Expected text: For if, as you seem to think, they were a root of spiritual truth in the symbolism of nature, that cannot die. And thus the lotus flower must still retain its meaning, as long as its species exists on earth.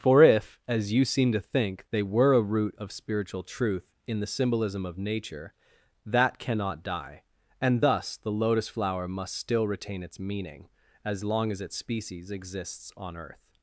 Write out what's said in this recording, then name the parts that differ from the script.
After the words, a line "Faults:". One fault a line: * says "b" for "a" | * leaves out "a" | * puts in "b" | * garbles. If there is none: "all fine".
For if, as you seem to think, they were a root of spiritual truth in the symbolism of nature, that cannot die. And thus the lotus flower must still retain its meaning, as long as its species exists on earth.
Faults:
all fine